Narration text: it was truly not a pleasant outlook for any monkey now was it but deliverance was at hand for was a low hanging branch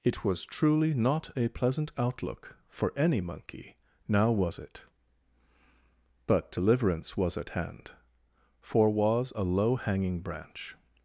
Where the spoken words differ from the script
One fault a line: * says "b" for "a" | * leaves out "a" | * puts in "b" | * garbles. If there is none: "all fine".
all fine